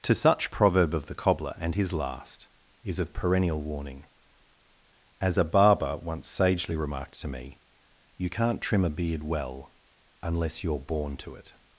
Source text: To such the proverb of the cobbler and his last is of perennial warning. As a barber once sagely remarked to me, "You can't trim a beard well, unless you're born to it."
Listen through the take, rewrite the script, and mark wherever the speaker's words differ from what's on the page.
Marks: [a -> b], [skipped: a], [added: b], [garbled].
To such [skipped: the] proverb of the cobbler and his last is of perennial warning. As a barber once sagely remarked to me, "You can't trim a beard well, unless you're born to it."